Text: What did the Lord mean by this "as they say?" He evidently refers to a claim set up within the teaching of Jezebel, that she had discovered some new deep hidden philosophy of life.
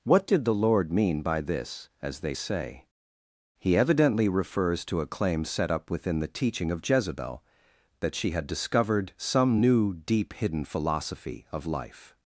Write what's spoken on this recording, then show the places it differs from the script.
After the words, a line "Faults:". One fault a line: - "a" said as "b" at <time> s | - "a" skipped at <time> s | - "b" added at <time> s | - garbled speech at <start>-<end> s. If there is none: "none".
What did the Lord mean by this "as they say?" He evidently refers to a claim set up within the teaching of Jezebel, that she had discovered some new deep hidden philosophy of life.
Faults:
none